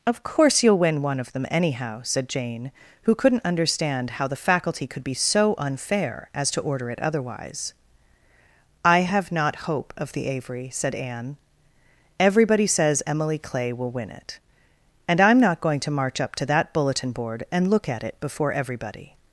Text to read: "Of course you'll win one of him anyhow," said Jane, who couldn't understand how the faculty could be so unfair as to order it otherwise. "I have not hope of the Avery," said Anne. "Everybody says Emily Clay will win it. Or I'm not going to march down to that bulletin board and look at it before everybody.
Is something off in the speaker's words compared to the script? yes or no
yes